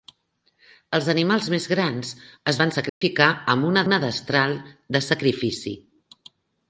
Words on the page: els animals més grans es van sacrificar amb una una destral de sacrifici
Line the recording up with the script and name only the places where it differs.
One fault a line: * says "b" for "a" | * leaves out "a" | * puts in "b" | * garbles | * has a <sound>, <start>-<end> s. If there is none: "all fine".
* has a dropout, 2.9-3.0 s